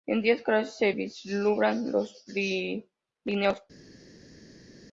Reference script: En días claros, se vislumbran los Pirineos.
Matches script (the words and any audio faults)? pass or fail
pass